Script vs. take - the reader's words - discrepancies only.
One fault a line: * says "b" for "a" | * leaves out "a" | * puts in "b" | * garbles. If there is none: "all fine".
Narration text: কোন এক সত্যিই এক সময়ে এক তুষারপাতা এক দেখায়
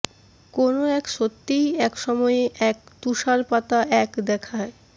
all fine